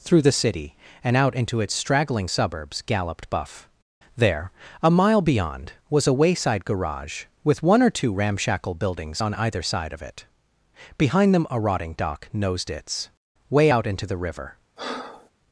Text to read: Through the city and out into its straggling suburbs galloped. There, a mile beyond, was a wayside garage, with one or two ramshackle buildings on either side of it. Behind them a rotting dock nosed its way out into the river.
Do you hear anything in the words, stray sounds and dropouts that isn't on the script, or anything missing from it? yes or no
yes